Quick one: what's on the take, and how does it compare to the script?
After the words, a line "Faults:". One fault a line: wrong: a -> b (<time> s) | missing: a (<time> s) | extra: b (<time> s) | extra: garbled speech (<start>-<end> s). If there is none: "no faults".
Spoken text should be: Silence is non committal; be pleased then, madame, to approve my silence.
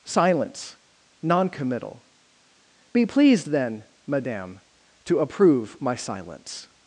Silence non committal; be pleased then, madame, to approve my silence.
Faults:
missing: is (0.8 s)